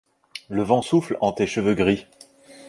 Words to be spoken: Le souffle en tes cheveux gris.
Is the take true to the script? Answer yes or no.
no